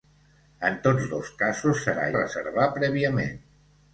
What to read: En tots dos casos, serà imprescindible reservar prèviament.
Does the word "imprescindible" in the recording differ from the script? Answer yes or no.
yes